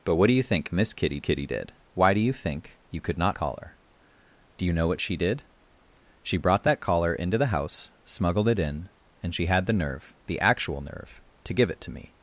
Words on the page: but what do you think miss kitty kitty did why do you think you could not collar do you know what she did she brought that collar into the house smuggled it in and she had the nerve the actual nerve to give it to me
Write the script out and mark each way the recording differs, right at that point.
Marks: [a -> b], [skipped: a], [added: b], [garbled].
but what do you think miss kitty kitty did why do you think you could not collar do you know what she did she brought that collar into the house smuggled it in and she had the nerve the actual nerve to give it to me